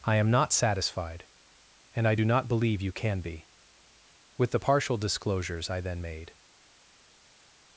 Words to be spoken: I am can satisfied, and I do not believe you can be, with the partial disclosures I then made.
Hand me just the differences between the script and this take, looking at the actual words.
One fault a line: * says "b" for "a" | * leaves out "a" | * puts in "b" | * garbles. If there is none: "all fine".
* says "not" for "can"